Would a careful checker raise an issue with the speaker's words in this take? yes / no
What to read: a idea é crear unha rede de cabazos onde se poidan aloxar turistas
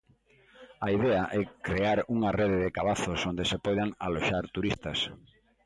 no